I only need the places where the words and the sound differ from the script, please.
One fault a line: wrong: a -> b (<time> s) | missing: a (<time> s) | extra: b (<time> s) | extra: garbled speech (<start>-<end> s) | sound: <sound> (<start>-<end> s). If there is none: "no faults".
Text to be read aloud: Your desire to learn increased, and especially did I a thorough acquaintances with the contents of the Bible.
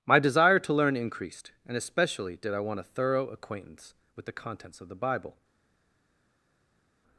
wrong: Your -> My (0.0 s)
extra: want (2.6 s)
wrong: acquaintances -> acquaintance (3.3 s)